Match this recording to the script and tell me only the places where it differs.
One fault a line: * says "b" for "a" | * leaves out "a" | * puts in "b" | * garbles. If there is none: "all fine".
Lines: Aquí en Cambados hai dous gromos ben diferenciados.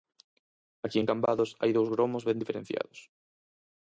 all fine